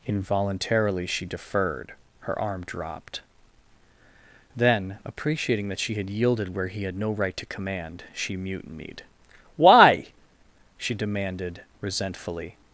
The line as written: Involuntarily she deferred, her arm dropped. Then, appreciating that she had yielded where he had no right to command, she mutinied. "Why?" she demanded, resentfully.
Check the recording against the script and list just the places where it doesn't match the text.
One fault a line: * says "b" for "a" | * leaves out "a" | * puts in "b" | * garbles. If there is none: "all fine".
all fine